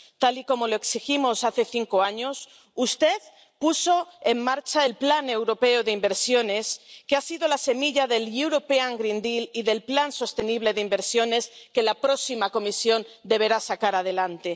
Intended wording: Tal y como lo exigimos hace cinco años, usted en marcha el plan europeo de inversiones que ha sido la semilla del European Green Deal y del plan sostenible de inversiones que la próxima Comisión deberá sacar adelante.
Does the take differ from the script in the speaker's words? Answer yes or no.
yes